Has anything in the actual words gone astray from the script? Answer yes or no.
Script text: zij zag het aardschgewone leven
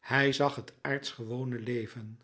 yes